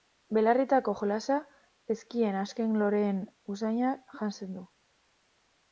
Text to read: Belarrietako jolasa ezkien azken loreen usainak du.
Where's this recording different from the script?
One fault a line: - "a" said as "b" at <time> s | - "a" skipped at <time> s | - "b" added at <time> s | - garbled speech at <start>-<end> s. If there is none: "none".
- "janzten" added at 4.2 s